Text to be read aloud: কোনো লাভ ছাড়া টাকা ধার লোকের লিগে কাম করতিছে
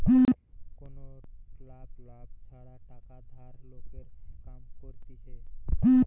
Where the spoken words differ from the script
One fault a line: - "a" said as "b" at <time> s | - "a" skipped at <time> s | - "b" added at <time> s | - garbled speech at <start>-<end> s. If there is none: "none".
- "লাভ" added at 2.0 s
- "লিগে" skipped at 4.1 s